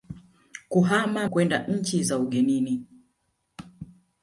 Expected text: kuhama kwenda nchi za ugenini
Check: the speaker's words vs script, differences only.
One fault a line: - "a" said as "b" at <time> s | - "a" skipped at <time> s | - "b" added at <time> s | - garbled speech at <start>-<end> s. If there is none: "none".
none